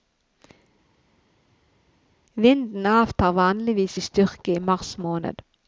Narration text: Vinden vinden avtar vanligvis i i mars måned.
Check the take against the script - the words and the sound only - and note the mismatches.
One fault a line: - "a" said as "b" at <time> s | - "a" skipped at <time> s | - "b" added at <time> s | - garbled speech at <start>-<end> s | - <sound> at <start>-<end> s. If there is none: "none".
- "vinden" skipped at 2.9 s
- "styrke" added at 4.0 s